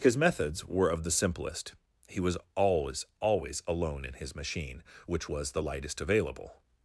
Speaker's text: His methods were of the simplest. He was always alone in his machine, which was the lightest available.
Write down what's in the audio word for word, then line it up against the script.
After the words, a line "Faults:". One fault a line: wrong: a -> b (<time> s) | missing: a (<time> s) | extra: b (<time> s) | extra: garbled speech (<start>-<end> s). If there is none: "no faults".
His methods were of the simplest. He was always always alone in his machine, which was the lightest available.
Faults:
extra: always (3.2 s)